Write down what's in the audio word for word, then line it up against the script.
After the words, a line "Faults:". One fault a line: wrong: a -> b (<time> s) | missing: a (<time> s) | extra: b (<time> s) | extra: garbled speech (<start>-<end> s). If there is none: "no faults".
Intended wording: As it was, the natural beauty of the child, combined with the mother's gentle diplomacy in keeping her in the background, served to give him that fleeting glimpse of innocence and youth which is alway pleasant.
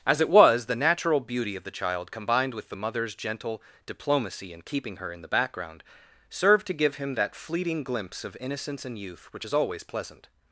As it was, the natural beauty of the child, combined with the mother's gentle diplomacy in keeping her in the background, served to give him that fleeting glimpse of innocence and youth which is always pleasant.
Faults:
wrong: alway -> always (9.5 s)